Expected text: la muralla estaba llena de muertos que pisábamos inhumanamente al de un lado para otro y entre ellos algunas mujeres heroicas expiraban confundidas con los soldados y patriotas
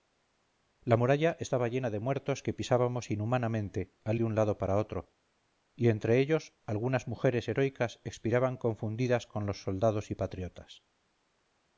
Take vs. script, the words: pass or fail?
pass